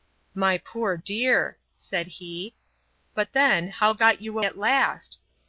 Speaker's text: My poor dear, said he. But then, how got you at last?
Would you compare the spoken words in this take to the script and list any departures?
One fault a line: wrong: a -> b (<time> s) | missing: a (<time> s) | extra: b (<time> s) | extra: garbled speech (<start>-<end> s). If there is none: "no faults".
no faults